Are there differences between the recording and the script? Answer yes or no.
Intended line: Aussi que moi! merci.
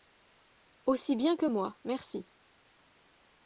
yes